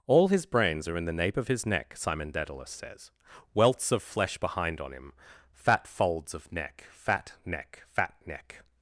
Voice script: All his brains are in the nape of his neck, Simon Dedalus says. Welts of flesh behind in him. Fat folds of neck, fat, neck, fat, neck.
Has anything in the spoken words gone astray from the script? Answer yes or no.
yes